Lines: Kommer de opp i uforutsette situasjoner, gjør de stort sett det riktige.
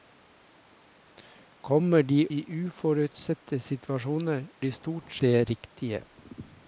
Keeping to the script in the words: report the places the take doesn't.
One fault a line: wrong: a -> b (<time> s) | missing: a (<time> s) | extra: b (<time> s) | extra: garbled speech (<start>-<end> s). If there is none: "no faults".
missing: opp (2.2 s)
missing: gjør (4.5 s)
missing: sett (5.1 s)